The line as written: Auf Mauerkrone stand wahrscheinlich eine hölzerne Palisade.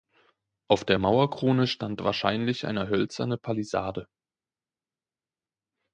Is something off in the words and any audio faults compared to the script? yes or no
yes